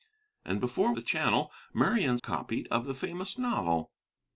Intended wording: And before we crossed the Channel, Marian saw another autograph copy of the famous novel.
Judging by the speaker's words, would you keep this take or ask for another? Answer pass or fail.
fail